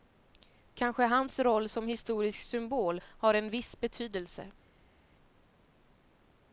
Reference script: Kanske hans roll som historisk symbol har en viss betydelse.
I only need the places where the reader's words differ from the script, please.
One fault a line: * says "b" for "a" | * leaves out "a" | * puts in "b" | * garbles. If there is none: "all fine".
all fine